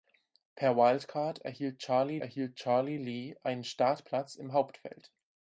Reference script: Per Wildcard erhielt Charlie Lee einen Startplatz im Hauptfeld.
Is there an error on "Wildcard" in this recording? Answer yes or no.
no